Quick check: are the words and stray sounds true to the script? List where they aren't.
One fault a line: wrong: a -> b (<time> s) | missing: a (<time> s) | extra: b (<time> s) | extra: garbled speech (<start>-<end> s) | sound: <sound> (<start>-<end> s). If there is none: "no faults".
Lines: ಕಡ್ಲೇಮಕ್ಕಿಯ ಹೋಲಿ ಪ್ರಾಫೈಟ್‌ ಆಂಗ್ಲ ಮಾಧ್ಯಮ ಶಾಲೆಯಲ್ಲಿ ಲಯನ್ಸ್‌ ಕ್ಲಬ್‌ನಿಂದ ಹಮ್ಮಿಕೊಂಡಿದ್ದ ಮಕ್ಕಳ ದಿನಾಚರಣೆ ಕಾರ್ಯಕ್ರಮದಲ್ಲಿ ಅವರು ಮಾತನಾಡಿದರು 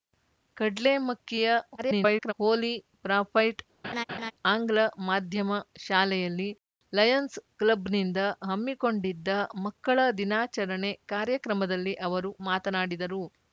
extra: garbled speech (1.8-2.3 s)
sound: laugh (3.8-4.3 s)